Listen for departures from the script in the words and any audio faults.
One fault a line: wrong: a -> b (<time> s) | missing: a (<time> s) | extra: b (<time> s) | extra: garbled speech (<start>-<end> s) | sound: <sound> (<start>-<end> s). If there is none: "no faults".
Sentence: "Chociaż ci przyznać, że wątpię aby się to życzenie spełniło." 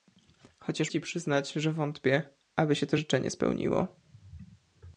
no faults